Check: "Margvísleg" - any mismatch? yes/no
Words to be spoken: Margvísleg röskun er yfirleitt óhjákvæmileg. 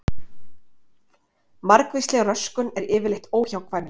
no